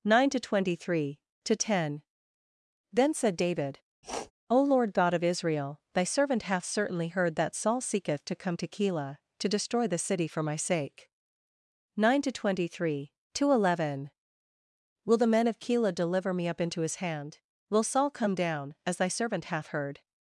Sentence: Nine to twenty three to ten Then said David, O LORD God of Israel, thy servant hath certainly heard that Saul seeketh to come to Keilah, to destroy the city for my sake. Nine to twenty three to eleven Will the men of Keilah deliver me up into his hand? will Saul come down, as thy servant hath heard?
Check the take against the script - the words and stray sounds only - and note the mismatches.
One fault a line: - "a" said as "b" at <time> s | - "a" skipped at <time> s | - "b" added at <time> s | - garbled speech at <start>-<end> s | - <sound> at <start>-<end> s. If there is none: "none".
- sniff at 4.0-4.3 s